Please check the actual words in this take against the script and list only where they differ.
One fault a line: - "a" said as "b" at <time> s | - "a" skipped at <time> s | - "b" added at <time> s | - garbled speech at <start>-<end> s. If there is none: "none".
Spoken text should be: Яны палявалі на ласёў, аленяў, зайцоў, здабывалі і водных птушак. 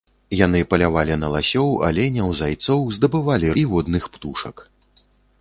none